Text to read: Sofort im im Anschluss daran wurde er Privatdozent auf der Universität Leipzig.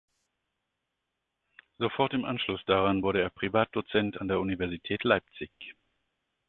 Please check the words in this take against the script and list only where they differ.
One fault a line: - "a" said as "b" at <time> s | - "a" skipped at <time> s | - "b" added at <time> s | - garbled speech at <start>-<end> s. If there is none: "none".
- "im" skipped at 2.2 s
- "auf" said as "an" at 4.1 s